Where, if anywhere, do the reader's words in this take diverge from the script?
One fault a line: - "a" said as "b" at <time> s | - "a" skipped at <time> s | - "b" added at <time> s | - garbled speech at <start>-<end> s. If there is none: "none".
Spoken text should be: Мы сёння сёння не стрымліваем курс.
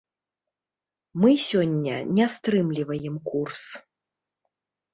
- "сёння" skipped at 2.0 s